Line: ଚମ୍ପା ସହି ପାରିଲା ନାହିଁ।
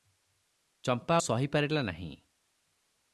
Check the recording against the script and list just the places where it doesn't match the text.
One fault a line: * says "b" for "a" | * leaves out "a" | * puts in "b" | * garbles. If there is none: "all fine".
all fine